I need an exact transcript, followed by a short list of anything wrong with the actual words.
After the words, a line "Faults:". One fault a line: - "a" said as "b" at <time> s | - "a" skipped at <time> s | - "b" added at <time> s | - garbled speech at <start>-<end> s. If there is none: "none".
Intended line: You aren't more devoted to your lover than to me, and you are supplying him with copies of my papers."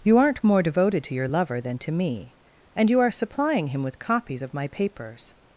You aren't more devoted to your lover than to me, and you are supplying him with copies of my papers."
Faults:
none